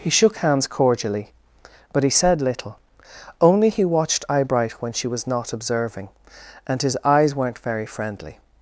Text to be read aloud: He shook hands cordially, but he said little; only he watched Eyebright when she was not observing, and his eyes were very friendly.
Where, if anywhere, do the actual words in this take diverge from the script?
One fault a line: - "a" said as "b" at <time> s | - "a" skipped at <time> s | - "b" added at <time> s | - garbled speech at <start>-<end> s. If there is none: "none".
- "were" said as "weren't" at 7.3 s